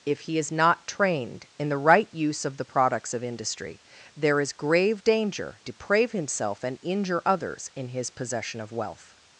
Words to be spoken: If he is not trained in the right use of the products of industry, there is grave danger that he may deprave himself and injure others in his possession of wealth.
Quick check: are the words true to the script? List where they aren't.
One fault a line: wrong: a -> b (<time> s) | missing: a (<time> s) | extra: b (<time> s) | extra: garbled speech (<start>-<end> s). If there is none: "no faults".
missing: that he may (5.6 s)